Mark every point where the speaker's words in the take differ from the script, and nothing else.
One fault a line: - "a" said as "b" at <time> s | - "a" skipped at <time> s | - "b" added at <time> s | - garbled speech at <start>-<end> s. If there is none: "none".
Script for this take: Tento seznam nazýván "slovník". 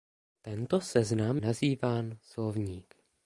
none